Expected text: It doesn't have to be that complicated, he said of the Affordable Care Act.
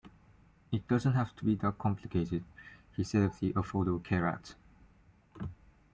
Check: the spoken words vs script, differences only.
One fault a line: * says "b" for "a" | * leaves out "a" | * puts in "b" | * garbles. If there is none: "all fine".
all fine